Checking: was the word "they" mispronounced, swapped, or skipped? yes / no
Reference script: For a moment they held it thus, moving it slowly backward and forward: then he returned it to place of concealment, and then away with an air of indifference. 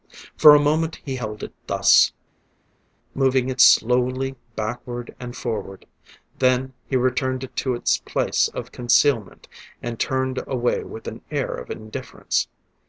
yes